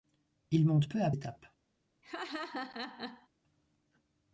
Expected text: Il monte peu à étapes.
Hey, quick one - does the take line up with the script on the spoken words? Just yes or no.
yes